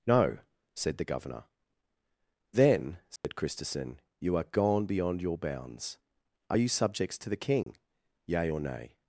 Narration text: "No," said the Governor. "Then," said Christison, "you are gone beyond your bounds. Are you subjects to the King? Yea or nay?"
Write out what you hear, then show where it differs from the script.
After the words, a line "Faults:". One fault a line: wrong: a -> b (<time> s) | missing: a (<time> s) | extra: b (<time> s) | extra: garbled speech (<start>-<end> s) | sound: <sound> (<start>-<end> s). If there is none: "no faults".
"No," said the Governor. "Then," said Christison, "you are gone beyond your bounds. Are you subjects to the King? Yea or nay?"
Faults:
sound: dropout (3.2-3.2 s)
sound: dropout (7.6-7.7 s)